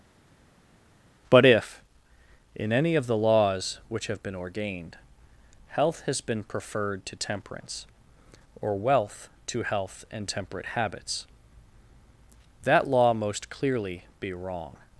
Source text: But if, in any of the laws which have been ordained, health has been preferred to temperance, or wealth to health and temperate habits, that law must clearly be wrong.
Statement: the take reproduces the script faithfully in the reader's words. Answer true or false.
false